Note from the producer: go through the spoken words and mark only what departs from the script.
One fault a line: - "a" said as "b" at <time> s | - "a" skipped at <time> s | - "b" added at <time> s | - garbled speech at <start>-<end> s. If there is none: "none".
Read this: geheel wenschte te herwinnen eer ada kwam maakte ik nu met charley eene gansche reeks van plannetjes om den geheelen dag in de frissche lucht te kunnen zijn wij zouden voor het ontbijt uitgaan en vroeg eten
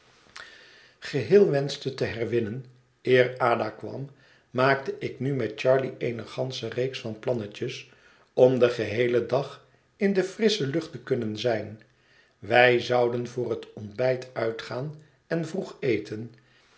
none